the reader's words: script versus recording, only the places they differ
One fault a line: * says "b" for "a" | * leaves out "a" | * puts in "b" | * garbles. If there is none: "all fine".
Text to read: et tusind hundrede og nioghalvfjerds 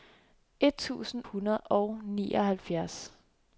all fine